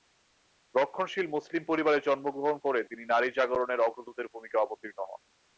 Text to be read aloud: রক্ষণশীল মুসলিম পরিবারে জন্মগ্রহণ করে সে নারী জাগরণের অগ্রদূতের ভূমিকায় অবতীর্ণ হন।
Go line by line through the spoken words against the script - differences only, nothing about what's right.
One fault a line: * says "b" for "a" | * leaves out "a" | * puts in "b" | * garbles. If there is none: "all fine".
* says "তিনি" for "সে"